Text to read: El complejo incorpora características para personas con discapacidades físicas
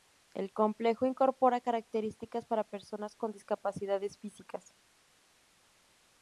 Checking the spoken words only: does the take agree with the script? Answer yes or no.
yes